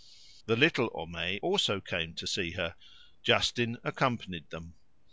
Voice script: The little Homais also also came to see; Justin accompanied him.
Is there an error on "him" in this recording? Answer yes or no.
yes